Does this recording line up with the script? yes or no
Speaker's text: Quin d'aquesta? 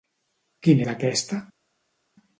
yes